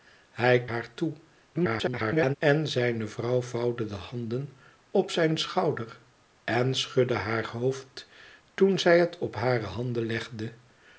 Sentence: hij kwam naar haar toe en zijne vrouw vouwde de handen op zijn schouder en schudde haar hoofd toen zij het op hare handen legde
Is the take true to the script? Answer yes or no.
no